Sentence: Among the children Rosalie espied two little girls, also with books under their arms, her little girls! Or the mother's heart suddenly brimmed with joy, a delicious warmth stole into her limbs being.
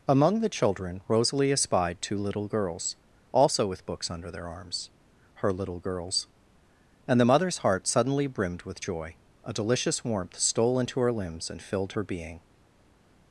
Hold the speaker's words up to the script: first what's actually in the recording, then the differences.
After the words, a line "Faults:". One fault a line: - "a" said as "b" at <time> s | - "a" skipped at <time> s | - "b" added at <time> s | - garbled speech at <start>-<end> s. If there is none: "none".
Among the children Rosalie espied two little girls, also with books under their arms, her little girls! And the mother's heart suddenly brimmed with joy, a delicious warmth stole into her limbs and filled her being.
Faults:
- "Or" said as "And" at 7.1 s
- "and filled her" added at 11.5 s